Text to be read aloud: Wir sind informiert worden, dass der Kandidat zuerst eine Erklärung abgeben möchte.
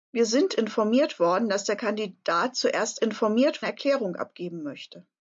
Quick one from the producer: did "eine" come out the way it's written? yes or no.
no